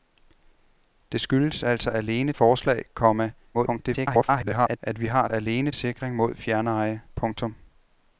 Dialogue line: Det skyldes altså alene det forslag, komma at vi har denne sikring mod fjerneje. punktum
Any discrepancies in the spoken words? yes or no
yes